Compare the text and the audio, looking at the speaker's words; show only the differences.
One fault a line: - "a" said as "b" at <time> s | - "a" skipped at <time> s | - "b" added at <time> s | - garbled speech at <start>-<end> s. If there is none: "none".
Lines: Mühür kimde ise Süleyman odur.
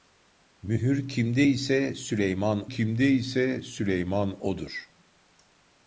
- "kimde ise Süleyman" added at 2.7 s